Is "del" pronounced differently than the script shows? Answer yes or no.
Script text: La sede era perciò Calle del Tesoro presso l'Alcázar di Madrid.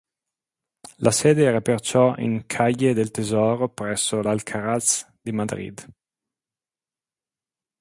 no